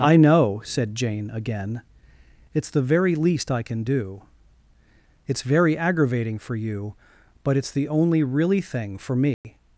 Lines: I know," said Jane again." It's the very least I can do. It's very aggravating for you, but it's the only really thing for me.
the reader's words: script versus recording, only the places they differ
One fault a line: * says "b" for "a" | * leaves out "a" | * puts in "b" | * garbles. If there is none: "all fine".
all fine